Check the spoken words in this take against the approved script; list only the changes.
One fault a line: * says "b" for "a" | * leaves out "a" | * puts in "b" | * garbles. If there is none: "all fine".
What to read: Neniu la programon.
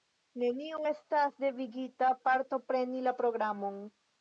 * puts in "estas devigita partopreni"